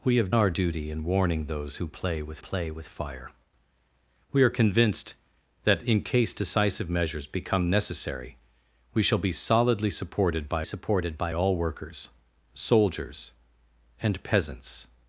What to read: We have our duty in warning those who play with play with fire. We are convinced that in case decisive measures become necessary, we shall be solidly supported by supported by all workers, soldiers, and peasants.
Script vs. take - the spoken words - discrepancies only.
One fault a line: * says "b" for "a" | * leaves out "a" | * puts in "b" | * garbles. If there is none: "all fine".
all fine